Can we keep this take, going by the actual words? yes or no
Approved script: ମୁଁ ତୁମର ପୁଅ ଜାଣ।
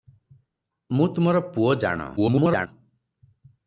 no